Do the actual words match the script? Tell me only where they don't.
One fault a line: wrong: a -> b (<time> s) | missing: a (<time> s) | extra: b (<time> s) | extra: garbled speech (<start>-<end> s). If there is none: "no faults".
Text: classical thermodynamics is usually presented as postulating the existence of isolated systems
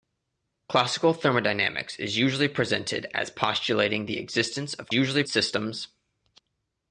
wrong: isolated -> usually (4.9 s)